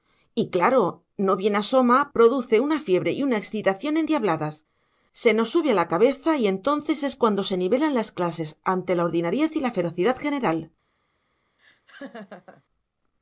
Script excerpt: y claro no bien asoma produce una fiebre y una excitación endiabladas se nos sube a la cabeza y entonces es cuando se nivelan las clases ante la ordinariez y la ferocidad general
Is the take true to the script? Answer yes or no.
yes